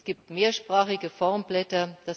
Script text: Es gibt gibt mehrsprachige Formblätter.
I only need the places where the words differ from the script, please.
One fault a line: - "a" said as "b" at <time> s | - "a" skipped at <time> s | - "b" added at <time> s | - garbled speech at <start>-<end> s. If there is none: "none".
- "gibt" skipped at 0.3 s